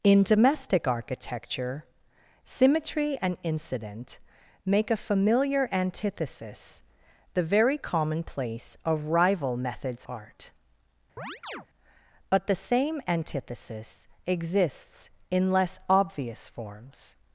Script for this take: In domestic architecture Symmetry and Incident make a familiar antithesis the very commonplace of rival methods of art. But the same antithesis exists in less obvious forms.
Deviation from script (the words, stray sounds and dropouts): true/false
true